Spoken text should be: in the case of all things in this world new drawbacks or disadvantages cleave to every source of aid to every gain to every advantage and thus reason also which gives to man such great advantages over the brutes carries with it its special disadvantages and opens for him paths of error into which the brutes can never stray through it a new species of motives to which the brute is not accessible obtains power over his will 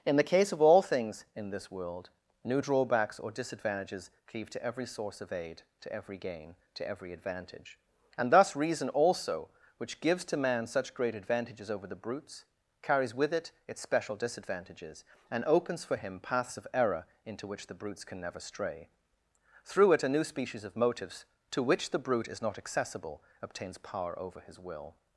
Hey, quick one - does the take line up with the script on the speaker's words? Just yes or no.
yes